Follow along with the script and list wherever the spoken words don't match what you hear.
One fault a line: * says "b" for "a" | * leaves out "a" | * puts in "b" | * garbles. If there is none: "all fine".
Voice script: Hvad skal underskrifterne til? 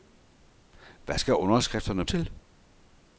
all fine